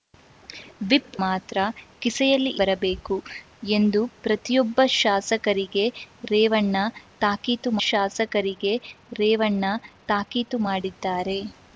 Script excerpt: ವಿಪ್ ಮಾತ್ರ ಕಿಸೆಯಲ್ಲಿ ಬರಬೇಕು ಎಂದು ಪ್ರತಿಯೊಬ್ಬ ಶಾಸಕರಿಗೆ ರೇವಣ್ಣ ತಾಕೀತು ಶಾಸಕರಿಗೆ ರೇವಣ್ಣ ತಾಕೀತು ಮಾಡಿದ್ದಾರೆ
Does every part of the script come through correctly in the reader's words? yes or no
yes